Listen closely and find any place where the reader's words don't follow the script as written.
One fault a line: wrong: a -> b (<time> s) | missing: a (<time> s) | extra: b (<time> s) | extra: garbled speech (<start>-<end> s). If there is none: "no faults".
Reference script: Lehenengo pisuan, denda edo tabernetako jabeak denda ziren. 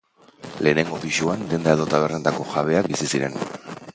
wrong: denda -> bizi (2.9 s)